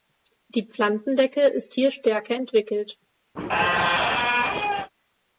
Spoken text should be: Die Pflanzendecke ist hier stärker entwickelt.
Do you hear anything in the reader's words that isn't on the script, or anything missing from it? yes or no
no